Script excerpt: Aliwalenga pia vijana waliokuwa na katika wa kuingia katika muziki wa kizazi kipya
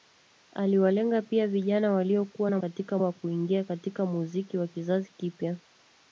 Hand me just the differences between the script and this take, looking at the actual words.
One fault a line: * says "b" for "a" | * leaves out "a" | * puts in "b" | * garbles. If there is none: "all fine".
all fine